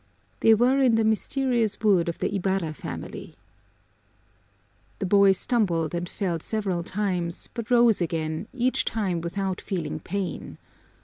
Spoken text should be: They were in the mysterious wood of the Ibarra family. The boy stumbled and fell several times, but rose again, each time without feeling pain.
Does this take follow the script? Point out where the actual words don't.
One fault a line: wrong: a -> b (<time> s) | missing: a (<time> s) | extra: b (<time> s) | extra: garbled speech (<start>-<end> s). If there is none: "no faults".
no faults